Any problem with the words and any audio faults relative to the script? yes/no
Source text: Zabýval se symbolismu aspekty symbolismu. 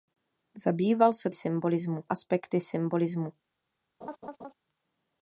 yes